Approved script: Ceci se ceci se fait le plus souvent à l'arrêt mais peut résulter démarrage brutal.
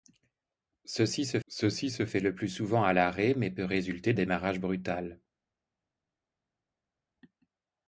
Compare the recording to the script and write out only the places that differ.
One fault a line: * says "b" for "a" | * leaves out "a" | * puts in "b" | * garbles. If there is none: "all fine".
all fine